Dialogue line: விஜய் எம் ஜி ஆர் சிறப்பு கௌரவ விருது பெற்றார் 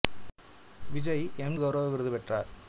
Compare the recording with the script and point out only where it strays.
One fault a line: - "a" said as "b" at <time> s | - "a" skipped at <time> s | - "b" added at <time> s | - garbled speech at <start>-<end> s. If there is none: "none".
- "ஜி ஆர் சிறப்பு" skipped at 1.6 s